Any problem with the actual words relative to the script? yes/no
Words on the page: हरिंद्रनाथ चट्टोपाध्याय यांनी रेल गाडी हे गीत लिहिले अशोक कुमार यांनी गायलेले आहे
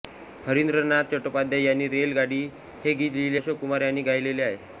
no